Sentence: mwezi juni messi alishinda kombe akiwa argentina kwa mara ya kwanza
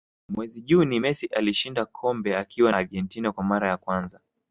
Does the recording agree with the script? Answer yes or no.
yes